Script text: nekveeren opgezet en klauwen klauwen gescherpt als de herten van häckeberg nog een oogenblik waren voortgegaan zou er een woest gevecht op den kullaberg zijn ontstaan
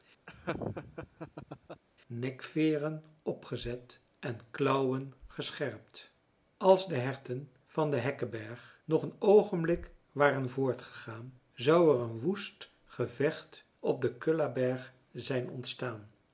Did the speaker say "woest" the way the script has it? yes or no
yes